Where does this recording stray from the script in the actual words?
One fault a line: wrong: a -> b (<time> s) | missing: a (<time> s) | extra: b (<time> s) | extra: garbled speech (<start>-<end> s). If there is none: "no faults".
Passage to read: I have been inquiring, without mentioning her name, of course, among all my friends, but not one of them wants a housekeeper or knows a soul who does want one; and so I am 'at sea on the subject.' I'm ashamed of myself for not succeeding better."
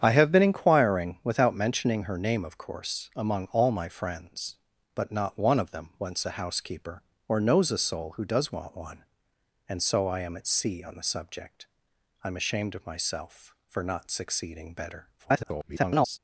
extra: garbled speech (15.2-16.2 s)